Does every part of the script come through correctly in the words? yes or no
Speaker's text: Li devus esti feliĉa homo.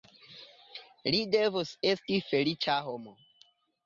yes